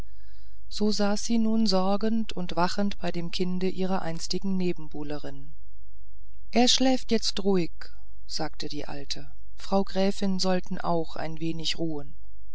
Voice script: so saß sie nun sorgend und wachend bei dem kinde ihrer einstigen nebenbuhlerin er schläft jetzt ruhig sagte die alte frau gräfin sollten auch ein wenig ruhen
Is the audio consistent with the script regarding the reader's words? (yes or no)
yes